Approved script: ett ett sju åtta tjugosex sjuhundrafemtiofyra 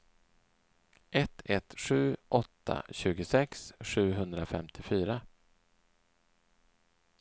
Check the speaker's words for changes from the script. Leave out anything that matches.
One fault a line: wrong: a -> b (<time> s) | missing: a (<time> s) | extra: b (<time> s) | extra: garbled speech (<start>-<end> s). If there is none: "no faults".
no faults